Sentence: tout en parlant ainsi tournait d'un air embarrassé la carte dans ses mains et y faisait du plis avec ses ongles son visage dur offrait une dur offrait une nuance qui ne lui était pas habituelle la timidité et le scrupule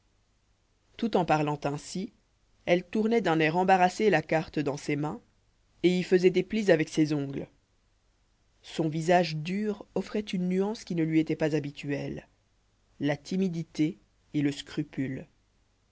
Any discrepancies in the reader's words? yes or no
yes